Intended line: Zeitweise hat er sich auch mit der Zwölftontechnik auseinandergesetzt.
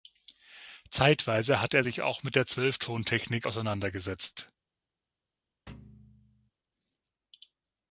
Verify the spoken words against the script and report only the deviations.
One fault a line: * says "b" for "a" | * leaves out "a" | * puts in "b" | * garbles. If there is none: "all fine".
all fine